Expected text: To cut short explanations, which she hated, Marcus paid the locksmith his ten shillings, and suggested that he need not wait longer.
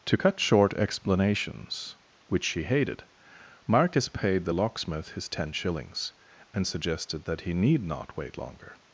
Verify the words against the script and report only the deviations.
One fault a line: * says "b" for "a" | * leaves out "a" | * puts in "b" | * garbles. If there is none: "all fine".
all fine